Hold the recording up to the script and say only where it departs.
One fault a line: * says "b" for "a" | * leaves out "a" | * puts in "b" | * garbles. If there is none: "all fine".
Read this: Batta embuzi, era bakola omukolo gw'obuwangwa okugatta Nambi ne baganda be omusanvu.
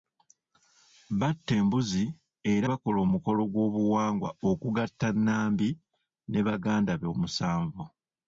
all fine